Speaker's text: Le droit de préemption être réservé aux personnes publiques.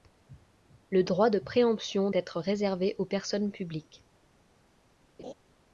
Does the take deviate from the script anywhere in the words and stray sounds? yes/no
yes